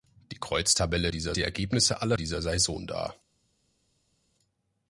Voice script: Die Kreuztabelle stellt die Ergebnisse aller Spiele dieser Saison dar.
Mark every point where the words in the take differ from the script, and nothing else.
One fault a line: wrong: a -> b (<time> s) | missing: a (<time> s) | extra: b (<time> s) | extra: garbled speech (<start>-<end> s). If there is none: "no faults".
wrong: stellt -> dieser (1.1 s)
missing: Spiele (2.2 s)